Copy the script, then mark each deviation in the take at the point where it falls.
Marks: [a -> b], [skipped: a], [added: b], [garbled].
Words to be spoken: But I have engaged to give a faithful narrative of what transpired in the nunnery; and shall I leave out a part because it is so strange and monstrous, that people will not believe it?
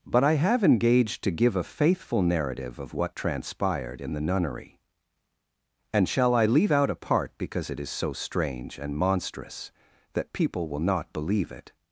But I have engaged to give a faithful narrative of what transpired in the nunnery; and shall I leave out a part because it is so strange and monstrous, that people will not believe it?